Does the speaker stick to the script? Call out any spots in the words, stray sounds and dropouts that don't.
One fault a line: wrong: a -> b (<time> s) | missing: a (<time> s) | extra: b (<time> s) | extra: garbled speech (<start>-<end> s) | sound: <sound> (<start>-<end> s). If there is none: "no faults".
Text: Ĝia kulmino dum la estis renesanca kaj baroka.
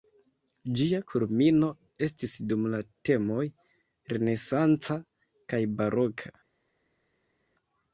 extra: estis (2.1 s)
wrong: estis -> temoj (3.1 s)